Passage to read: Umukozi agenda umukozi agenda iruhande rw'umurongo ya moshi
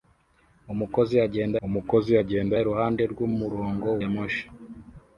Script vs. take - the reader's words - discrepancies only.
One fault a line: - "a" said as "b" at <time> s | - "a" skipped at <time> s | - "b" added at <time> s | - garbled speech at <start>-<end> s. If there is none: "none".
none